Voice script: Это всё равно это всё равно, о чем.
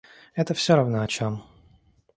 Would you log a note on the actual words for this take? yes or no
yes